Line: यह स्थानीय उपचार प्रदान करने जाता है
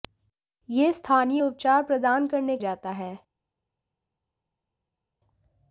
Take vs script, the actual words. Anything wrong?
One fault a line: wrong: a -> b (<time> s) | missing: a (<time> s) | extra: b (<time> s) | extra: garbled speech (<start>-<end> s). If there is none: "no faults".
no faults